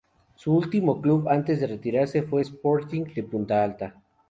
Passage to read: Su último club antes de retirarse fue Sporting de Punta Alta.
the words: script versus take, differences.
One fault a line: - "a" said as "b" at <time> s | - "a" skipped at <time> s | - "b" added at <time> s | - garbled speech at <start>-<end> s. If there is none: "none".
none